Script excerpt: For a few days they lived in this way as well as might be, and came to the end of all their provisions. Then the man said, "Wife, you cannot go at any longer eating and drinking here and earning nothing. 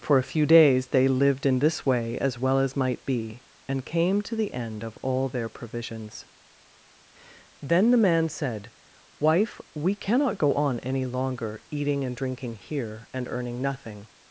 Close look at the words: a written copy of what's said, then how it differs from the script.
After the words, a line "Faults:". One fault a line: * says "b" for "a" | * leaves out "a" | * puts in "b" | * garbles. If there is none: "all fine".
For a few days they lived in this way as well as might be, and came to the end of all their provisions. Then the man said, "Wife, we cannot go on any longer eating and drinking here and earning nothing.
Faults:
* says "we" for "you"
* says "on" for "at"